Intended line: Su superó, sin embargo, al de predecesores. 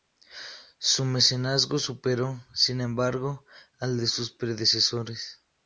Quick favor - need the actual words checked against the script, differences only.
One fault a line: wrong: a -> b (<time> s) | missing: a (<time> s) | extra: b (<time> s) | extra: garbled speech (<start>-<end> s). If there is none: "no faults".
extra: mecenazgo (1.1 s)
extra: sus (4.1 s)